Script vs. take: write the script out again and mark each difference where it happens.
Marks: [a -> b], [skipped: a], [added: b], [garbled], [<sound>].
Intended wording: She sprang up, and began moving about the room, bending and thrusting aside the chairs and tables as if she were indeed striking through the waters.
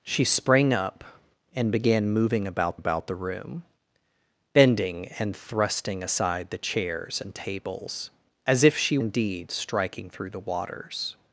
She sprang up, and began moving about [added: about] the room, bending and thrusting aside the chairs and tables as if she [skipped: were] indeed striking through the waters.